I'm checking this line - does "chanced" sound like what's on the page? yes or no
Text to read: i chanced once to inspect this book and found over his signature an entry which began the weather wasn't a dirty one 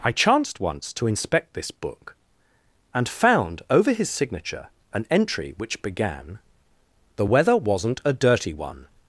yes